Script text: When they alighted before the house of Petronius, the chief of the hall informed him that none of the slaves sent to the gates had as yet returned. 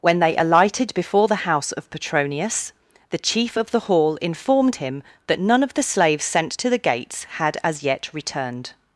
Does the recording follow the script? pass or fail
pass